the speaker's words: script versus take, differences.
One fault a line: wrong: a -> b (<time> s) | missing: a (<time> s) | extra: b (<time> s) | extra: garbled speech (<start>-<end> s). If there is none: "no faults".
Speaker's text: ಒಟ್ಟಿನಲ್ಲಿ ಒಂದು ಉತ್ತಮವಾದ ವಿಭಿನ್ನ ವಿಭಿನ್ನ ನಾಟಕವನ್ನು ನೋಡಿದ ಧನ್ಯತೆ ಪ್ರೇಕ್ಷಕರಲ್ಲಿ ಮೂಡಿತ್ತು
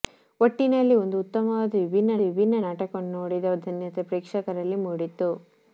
no faults